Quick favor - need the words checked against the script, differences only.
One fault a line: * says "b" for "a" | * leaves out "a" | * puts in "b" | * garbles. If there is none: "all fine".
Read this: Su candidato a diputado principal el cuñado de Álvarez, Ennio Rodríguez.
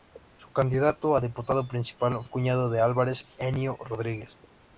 all fine